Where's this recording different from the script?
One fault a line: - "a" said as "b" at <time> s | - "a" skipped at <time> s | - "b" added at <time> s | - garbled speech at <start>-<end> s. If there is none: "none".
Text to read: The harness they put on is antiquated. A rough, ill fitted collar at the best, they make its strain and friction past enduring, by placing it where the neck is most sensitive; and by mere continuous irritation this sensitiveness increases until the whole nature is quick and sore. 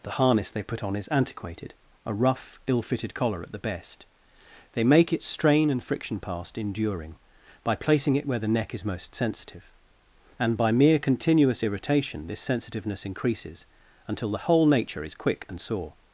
none